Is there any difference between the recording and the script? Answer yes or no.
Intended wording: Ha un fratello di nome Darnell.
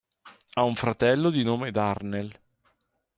no